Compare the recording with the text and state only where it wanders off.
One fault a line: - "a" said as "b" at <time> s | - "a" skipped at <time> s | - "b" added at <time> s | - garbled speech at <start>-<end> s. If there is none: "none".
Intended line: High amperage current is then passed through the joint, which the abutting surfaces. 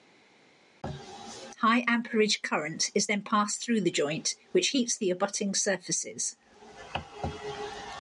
- "heats" added at 4.7 s